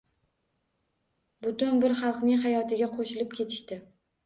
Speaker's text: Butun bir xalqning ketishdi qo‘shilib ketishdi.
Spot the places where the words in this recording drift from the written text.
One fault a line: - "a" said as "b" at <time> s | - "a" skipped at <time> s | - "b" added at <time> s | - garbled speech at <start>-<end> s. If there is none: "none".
- "ketishdi" said as "hayotiga" at 2.4 s